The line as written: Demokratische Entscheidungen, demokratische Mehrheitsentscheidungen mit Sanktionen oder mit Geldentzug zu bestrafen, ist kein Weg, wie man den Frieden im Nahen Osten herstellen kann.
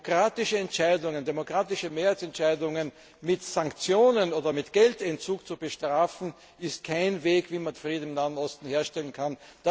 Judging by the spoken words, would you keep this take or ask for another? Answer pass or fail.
fail